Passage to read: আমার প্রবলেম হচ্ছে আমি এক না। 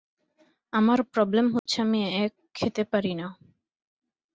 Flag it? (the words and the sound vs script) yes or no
yes